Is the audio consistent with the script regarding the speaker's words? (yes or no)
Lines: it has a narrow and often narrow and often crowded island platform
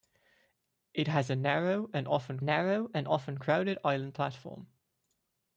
yes